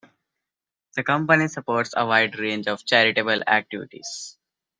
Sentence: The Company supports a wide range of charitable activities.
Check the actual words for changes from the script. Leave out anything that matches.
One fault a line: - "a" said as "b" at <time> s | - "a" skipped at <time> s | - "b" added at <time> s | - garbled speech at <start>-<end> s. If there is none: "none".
none